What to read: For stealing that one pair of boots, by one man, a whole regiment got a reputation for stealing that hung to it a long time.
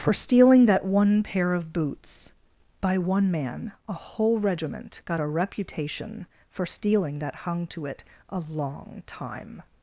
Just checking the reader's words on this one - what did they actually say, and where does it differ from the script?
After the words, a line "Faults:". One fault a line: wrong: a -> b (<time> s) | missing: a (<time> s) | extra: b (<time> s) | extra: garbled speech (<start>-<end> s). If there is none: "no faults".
For stealing that one pair of boots, by one man, a whole regiment got a reputation for stealing that hung to it a long time.
Faults:
no faults